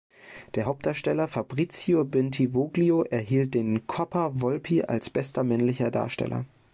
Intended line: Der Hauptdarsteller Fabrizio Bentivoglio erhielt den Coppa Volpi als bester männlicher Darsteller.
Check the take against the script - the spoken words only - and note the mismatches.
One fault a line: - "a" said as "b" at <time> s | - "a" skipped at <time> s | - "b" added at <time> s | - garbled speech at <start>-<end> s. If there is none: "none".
none